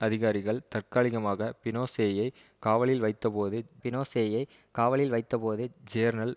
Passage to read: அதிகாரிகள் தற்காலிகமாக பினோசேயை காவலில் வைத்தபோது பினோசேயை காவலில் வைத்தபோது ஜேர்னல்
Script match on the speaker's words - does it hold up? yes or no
yes